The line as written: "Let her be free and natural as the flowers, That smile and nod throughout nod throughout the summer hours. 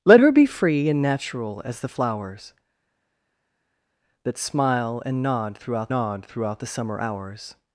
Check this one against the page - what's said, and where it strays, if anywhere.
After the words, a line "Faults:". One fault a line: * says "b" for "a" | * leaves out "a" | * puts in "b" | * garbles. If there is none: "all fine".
"Let her be free and natural as the flowers, That smile and nod throughout nod throughout the summer hours.
Faults:
all fine